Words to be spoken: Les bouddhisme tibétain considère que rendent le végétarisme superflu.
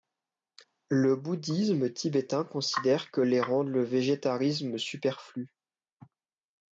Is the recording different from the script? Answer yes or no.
yes